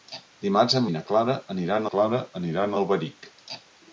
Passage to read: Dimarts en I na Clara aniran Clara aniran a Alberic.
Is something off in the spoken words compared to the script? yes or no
no